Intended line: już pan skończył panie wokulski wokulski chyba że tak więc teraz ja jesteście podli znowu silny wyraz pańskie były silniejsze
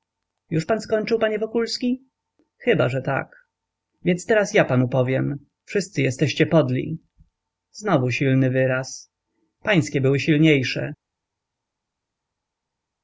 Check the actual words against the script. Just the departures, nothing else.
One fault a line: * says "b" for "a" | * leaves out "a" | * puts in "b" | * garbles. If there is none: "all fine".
* leaves out "wokulski"
* puts in "panu powiem wszyscy"